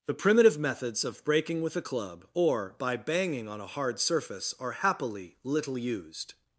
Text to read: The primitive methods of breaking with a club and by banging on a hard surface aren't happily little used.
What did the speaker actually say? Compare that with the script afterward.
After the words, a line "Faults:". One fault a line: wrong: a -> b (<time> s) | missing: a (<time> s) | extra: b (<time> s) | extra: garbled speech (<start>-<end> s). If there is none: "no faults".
The primitive methods of breaking with a club or by banging on a hard surface are happily little used.
Faults:
wrong: and -> or (2.3 s)
wrong: aren't -> are (4.6 s)